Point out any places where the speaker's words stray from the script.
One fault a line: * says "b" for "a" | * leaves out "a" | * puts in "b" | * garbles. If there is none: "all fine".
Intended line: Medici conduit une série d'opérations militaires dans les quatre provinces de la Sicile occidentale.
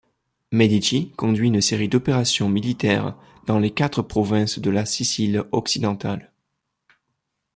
all fine